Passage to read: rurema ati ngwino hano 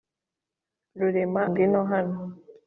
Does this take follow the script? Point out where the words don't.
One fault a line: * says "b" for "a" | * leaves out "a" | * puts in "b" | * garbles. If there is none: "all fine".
* leaves out "ati"